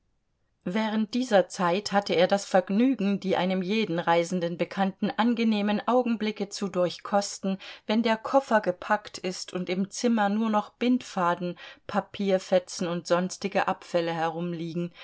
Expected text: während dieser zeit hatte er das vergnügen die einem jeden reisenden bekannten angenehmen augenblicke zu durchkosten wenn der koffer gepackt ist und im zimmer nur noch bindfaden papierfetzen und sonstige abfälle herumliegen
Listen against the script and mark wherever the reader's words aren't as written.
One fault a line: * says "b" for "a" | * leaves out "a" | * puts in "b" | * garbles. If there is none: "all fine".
all fine